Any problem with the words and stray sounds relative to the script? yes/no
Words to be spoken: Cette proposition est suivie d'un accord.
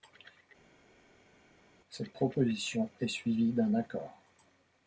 no